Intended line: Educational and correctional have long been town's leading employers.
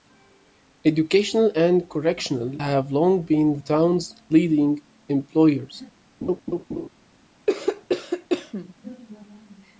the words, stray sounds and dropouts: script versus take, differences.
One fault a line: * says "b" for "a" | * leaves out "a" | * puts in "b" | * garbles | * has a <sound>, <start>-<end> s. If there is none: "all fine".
* has a laugh, 6.2-6.9 s
* has a cough, 7.5-8.7 s